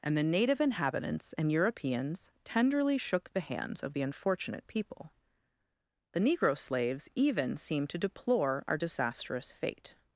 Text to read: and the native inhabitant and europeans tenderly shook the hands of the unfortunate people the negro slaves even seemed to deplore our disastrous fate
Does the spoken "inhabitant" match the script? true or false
false